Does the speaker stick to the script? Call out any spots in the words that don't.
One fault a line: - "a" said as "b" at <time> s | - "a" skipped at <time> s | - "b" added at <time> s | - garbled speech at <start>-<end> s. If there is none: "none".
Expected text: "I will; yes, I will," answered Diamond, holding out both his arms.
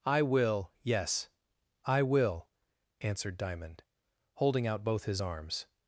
none